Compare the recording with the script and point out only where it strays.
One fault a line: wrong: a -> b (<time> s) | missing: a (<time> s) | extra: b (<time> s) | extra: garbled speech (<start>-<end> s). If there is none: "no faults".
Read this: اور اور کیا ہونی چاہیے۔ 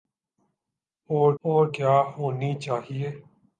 no faults